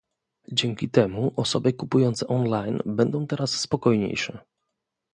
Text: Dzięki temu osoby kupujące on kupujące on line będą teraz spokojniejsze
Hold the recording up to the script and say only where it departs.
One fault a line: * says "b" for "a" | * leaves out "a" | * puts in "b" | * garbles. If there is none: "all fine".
* leaves out "kupujące on"